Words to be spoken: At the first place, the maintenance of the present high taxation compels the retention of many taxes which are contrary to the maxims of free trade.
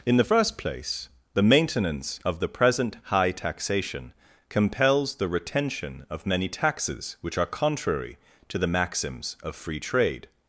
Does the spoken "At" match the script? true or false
false